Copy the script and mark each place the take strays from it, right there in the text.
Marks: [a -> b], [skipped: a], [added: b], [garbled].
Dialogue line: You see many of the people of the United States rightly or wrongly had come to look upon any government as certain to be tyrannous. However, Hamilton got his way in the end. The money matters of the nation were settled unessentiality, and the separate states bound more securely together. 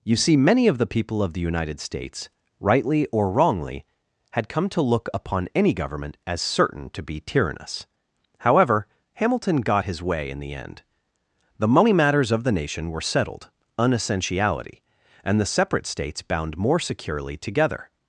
You see many of the people of the United States rightly or wrongly had come to look upon any government as certain to be tyrannous. However, Hamilton got his way in the end. The money matters of the nation were settled unessentiality, and the separate states bound more securely together.